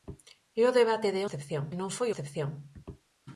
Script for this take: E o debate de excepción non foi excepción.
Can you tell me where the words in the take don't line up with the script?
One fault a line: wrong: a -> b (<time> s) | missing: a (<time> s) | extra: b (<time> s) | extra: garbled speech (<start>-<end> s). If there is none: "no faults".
no faults